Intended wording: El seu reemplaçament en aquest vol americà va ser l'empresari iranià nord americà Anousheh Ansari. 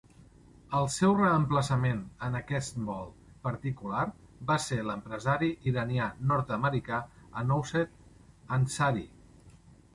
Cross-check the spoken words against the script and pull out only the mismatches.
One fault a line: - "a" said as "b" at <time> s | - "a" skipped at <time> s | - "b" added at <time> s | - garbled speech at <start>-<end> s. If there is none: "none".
- "americà" said as "particular" at 3.5 s